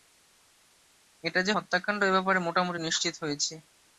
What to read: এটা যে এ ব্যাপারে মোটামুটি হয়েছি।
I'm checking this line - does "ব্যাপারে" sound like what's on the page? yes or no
yes